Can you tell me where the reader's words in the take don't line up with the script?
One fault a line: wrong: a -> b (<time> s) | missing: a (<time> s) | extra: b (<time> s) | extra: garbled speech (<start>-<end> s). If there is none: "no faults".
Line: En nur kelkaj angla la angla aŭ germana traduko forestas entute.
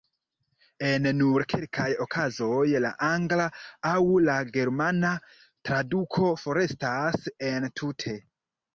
wrong: angla -> okazoj (2.0 s)
extra: la (4.3 s)